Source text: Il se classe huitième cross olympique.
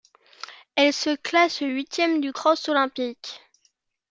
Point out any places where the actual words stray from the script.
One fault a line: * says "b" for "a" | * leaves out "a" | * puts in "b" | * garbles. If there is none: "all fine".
* says "Elle" for "Il"
* puts in "du"